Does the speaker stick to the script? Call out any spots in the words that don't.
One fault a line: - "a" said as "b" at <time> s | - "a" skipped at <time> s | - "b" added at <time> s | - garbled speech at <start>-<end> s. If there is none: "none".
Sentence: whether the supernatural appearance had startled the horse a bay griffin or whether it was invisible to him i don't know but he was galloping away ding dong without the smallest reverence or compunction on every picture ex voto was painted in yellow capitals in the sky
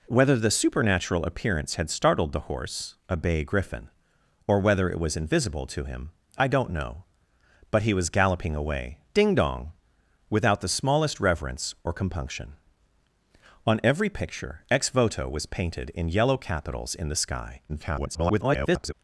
- garbled speech at 17.7-18.9 s